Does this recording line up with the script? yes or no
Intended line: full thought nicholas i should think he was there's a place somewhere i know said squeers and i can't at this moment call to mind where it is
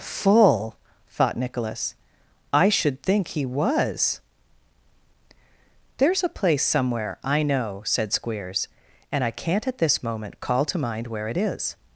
yes